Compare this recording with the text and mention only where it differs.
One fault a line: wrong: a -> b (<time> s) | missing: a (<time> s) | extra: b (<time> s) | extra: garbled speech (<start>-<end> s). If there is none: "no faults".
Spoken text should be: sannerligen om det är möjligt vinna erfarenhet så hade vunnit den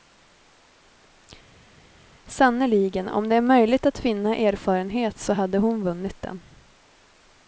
extra: att (3.9 s)
extra: hon (5.6 s)